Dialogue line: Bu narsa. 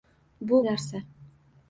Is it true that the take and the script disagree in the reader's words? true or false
false